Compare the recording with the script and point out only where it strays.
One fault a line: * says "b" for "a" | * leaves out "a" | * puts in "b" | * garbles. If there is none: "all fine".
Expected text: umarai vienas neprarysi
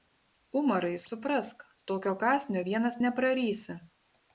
* puts in "suprask tokio kąsnio"